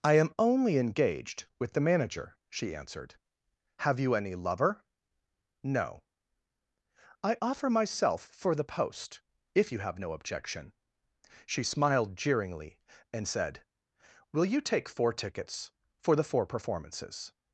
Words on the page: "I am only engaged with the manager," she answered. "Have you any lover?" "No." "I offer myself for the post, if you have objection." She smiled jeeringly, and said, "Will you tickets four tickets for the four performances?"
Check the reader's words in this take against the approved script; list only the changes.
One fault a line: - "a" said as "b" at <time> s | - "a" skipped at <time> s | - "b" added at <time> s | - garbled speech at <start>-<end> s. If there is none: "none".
- "no" added at 10.0 s
- "tickets" said as "take" at 14.6 s